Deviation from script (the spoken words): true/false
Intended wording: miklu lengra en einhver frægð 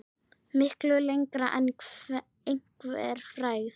false